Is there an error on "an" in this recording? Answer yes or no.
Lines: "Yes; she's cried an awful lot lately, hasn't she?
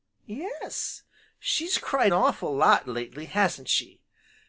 yes